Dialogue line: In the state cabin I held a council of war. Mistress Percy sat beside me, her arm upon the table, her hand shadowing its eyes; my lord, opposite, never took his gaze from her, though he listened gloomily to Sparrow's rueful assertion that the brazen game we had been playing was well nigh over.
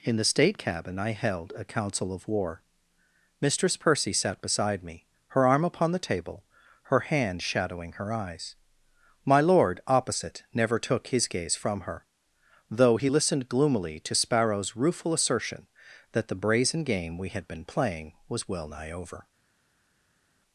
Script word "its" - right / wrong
wrong